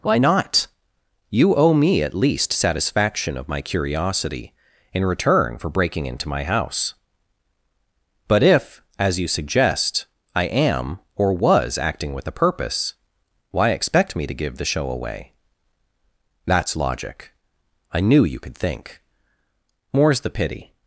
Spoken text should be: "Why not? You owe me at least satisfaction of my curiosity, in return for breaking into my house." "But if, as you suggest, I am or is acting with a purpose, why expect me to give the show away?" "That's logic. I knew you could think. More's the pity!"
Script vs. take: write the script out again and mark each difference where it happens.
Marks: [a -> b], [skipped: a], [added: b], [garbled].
"Why not? You owe me at least satisfaction of my curiosity, in return for breaking into my house." "But if, as you suggest, I am or [is -> was] acting with a purpose, why expect me to give the show away?" "That's logic. I knew you could think. More's the pity!"